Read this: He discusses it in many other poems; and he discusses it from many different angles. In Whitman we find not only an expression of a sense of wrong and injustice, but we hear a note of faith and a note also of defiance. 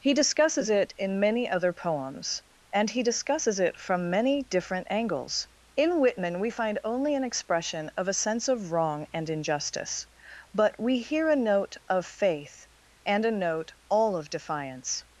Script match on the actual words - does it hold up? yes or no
no